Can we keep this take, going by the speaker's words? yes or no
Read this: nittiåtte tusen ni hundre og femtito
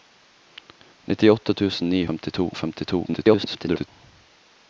no